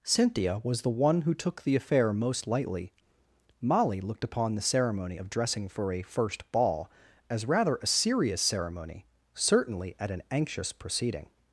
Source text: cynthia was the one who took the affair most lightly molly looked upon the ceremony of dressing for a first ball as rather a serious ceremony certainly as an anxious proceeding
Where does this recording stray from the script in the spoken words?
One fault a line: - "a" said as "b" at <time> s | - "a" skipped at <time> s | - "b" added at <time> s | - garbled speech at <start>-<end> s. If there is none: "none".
- "as" said as "at" at 10.0 s